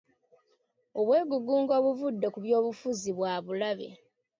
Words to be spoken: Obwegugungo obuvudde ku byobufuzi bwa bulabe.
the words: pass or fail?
pass